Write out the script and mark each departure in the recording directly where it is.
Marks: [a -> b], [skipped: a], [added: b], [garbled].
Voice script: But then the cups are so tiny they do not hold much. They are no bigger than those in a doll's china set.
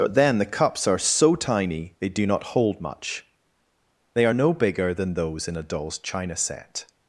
But then the cups are so tiny they do not hold much. They are no bigger than those in a doll's china set.